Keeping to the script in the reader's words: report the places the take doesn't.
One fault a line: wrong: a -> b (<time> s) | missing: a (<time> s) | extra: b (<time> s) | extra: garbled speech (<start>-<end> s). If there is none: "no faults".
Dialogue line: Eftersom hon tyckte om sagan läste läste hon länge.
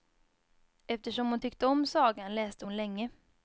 missing: läste (2.7 s)